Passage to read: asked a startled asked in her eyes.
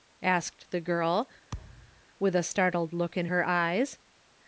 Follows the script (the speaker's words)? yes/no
no